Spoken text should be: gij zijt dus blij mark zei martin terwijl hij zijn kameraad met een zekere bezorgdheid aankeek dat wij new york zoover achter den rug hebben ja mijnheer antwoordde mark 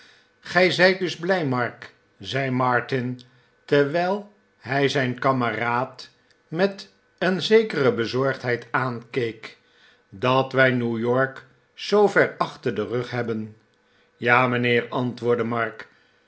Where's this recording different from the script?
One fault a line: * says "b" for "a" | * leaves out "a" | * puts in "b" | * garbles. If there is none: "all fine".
all fine